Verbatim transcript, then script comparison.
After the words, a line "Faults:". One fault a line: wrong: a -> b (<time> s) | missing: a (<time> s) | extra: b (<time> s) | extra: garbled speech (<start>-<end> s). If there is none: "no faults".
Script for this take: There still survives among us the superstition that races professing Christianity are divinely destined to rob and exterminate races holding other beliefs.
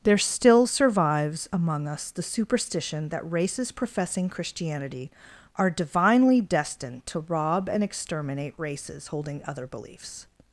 There still survives among us the superstition that races professing Christianity are divinely destined to rob and exterminate races holding other beliefs.
Faults:
no faults